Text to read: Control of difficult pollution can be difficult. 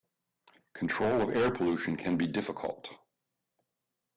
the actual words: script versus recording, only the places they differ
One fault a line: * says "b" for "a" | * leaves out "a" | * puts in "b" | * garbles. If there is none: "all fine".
* says "air" for "difficult"